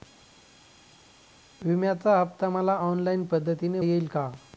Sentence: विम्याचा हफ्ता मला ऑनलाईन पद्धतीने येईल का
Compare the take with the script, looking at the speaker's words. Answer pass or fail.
pass